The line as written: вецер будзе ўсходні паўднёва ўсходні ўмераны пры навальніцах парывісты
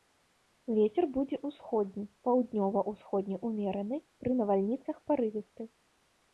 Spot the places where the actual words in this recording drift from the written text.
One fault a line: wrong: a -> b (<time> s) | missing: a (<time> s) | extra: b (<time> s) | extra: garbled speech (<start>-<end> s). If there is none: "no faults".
no faults